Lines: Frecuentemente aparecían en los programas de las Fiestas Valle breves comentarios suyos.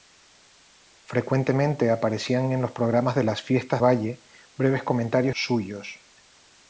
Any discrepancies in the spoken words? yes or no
no